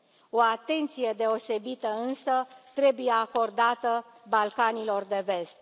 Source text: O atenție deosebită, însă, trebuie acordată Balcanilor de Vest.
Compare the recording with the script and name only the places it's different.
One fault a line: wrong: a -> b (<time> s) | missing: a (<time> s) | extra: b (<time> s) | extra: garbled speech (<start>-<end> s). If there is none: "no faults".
no faults